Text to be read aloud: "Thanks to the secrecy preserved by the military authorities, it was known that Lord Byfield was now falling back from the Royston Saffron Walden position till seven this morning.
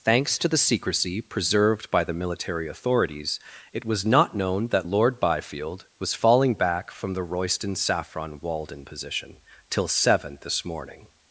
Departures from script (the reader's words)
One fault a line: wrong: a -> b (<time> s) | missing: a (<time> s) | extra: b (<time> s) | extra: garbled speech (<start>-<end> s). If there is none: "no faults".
extra: not (4.0 s)
missing: now (6.1 s)